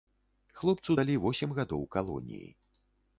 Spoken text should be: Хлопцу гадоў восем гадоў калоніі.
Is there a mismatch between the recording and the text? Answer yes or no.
yes